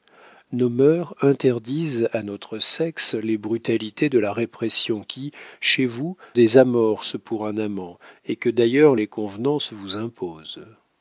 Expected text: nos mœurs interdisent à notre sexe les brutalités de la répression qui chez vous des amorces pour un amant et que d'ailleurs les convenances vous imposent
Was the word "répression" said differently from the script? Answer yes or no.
no